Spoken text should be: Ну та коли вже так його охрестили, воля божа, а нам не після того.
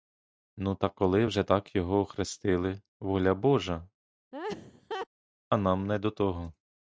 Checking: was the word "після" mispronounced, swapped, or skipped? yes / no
yes